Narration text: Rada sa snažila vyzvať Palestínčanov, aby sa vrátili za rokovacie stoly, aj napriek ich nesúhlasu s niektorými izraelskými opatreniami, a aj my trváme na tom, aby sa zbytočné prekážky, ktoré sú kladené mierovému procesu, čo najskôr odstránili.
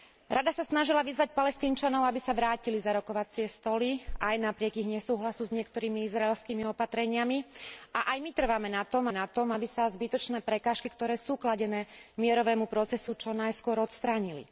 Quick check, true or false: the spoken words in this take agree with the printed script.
false